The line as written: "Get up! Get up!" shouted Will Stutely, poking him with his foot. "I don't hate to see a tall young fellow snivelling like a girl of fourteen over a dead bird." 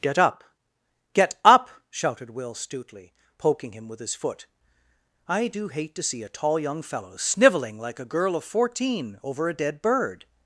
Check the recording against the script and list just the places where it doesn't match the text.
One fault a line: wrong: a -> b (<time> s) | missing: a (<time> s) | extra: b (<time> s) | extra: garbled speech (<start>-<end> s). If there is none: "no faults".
wrong: don't -> do (5.5 s)